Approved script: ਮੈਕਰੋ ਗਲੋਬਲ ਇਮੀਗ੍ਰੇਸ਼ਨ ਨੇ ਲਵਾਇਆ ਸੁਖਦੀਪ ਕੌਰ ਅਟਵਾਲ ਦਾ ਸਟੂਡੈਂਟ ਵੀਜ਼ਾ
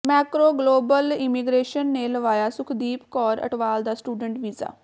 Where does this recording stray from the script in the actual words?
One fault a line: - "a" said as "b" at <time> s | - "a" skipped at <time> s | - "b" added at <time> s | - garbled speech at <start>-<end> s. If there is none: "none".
none